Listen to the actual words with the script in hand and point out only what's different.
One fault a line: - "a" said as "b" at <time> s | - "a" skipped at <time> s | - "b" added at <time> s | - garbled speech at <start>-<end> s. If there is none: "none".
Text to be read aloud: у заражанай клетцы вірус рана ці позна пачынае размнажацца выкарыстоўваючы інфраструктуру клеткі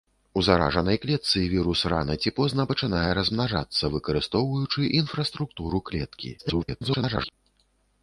- garbled speech at 6.4-7.3 s